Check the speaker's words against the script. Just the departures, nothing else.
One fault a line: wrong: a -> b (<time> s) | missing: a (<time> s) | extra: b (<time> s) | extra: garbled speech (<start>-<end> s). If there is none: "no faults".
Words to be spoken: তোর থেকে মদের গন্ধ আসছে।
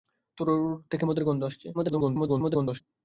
extra: garbled speech (1.7-2.8 s)